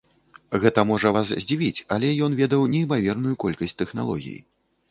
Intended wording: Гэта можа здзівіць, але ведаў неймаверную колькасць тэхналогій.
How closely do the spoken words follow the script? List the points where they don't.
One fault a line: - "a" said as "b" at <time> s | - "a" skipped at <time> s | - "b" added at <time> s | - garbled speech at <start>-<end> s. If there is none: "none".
- "вас" added at 1.2 s
- "ён" added at 2.3 s